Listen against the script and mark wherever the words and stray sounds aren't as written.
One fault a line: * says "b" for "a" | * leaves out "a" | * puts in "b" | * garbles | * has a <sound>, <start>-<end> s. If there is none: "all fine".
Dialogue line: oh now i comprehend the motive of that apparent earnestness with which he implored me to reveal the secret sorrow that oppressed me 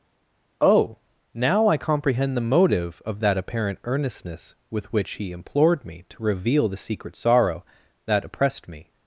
all fine